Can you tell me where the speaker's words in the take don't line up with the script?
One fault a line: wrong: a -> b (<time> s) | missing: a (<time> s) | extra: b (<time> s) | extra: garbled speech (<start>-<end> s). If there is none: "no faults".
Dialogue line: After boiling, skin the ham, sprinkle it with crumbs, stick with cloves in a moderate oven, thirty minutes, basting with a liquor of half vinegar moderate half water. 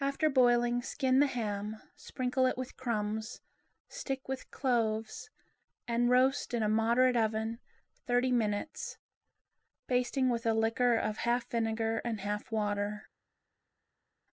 extra: and roast (5.9 s)
wrong: moderate -> and (12.0 s)